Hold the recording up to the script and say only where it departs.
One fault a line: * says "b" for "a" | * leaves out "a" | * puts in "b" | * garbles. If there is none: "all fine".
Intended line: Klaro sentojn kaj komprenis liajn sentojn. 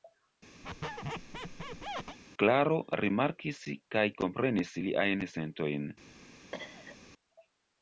* says "rimarkis" for "sentojn"